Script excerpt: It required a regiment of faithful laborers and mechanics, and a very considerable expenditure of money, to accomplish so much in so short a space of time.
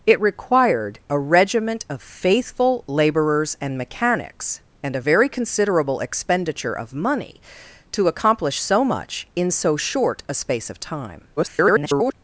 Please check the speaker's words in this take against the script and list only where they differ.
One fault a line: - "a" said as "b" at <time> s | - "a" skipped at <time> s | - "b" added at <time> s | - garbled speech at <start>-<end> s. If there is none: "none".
- garbled speech at 11.4-12.1 s